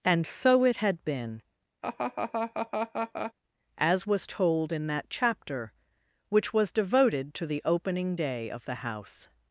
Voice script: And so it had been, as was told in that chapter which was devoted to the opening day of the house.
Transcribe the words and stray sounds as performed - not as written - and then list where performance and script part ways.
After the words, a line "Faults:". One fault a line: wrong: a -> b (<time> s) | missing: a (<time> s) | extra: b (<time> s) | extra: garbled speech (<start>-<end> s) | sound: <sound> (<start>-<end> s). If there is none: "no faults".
And so it had been, as was told in that chapter which was devoted to the opening day of the house.
Faults:
sound: laugh (1.8-3.3 s)